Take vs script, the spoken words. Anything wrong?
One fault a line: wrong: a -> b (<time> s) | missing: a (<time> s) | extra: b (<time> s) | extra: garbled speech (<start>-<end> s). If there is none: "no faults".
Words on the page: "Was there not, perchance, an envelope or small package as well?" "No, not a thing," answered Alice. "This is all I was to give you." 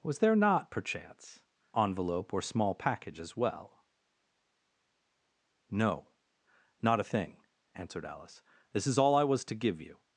missing: an (1.4 s)